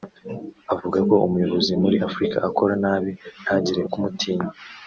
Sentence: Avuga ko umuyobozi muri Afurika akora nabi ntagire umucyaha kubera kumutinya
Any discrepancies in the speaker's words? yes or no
yes